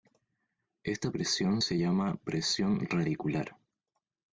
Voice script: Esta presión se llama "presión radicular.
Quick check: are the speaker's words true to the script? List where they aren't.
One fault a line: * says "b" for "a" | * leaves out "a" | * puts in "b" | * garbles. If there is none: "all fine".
all fine